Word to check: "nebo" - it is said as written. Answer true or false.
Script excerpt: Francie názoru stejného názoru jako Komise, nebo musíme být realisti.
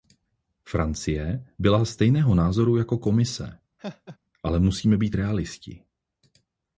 false